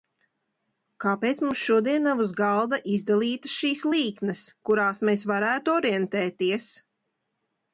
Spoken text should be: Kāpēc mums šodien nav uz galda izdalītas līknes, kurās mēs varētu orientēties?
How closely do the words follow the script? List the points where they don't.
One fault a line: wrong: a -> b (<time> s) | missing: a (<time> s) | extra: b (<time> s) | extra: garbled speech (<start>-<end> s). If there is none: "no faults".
extra: šīs (3.6 s)